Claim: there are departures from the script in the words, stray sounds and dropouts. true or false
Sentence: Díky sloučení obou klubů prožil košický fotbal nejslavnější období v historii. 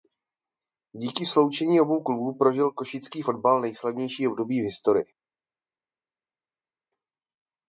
false